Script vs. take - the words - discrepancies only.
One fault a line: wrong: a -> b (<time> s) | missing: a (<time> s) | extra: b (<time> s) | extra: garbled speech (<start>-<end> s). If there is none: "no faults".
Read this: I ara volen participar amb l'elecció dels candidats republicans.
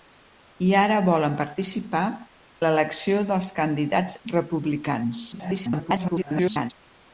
missing: amb (2.0 s)
extra: garbled speech (5.3-6.7 s)